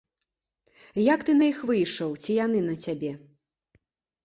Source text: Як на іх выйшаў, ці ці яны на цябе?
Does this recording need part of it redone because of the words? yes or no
yes